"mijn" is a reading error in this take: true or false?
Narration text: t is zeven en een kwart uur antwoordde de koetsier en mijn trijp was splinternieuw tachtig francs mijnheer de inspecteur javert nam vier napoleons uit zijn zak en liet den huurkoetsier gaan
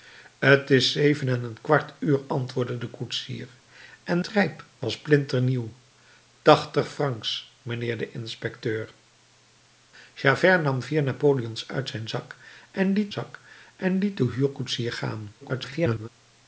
true